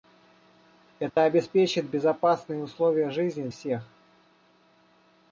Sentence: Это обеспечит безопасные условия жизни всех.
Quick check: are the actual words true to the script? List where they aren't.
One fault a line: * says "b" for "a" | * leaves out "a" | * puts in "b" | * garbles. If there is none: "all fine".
all fine